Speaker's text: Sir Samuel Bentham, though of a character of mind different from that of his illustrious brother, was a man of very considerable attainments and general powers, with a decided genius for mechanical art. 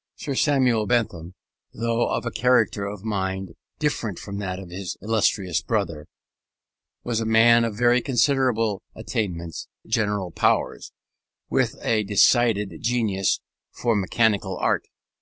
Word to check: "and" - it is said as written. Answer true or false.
false